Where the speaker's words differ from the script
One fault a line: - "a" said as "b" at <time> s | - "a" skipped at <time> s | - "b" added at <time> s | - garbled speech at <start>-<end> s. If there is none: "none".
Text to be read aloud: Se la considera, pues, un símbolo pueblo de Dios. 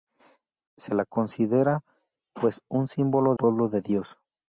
none